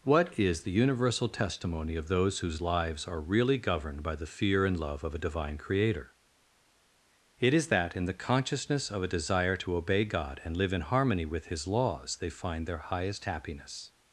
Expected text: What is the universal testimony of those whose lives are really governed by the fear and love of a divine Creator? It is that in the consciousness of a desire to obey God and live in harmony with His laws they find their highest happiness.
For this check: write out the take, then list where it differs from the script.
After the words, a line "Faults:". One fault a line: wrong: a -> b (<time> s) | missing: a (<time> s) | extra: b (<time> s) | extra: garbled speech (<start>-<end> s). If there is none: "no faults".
What is the universal testimony of those whose lives are really governed by the fear and love of a divine Creator? It is that in the consciousness of a desire to obey God and live in harmony with His laws they find their highest happiness.
Faults:
no faults